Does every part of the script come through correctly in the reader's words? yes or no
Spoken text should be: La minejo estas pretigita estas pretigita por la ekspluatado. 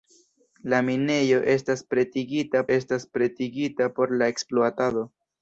yes